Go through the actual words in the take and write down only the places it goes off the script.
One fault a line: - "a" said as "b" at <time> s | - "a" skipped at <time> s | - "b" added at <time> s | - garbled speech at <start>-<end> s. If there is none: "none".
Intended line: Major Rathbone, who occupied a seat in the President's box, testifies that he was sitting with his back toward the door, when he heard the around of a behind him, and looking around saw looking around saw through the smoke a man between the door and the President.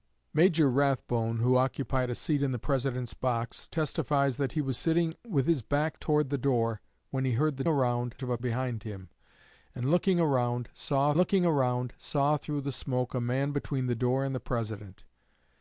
none